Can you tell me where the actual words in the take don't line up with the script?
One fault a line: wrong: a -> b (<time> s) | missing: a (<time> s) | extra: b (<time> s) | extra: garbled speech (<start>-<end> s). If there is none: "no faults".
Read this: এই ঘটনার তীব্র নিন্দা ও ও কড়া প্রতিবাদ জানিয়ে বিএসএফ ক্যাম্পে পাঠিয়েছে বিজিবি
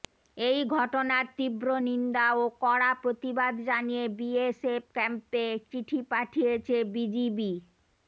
missing: ও (2.5 s)
extra: চিঠি (5.7 s)